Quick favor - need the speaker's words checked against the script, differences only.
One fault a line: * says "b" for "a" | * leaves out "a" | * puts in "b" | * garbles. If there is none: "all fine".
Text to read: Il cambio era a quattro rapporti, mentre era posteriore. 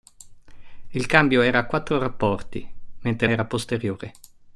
all fine